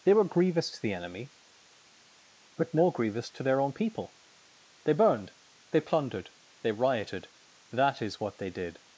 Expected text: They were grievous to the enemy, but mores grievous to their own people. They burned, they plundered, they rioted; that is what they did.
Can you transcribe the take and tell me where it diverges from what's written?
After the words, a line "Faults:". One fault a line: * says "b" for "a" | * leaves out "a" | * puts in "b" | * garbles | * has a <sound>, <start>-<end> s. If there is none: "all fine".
They were grievous to the enemy, but more grievous to their own people. They burned, they plundered, they rioted; that is what they did.
Faults:
* says "more" for "mores"